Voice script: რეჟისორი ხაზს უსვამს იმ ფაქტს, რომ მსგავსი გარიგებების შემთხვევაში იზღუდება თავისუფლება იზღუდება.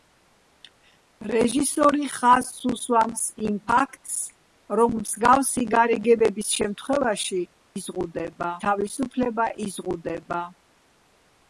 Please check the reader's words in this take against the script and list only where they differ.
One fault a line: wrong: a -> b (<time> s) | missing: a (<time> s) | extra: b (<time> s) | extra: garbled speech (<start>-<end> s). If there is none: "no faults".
no faults